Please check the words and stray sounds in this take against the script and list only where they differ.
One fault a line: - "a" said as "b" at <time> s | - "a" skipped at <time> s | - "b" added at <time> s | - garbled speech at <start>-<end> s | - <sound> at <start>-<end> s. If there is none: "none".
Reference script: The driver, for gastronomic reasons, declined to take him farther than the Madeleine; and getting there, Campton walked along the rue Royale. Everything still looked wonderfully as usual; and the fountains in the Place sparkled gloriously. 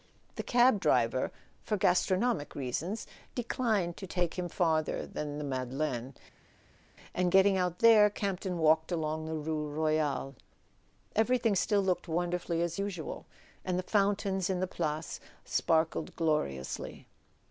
- "cab" added at 0.4 s
- "out" added at 7.6 s